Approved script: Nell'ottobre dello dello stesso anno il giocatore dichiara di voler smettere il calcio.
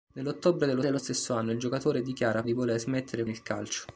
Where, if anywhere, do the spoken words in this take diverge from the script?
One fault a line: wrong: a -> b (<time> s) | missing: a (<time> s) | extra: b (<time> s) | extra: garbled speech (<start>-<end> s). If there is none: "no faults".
no faults